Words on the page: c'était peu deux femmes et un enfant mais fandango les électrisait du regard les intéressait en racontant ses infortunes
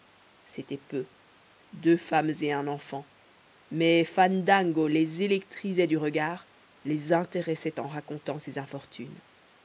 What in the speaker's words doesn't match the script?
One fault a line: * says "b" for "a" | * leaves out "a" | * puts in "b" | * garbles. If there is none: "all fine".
all fine